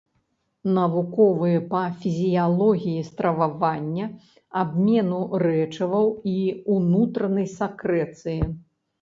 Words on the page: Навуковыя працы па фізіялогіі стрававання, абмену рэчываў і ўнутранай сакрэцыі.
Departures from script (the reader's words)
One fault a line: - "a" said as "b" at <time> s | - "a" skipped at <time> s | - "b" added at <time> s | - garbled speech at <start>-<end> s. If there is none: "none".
- "працы" skipped at 1.6 s